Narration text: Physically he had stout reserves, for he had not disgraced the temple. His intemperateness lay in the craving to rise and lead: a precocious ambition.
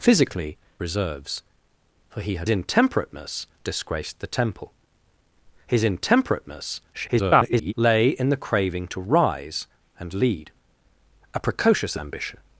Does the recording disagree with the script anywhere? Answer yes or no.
yes